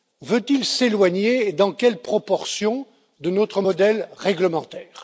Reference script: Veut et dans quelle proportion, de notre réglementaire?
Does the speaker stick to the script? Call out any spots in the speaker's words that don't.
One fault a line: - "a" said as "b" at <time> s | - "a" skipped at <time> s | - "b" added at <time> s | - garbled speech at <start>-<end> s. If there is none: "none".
- "il s'éloigner" added at 0.5 s
- "modèle" added at 3.6 s